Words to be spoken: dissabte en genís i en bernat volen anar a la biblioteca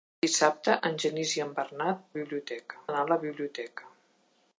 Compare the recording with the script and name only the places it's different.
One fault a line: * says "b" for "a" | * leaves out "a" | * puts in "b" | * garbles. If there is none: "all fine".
* says "biblioteca" for "volen"